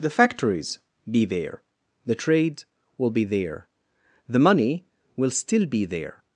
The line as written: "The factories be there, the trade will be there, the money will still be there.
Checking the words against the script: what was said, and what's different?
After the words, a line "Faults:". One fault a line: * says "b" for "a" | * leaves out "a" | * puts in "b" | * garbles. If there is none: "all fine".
"The factories be there, the trade will be there, the money will still be there.
Faults:
all fine